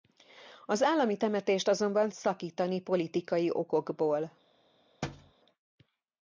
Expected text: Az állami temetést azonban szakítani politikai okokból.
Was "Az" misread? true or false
false